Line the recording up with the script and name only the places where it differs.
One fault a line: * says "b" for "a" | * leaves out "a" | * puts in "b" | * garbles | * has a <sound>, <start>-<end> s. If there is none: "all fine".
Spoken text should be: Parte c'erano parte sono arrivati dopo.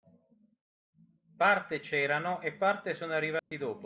* puts in "e"
* has a dropout, 3.4-3.5 s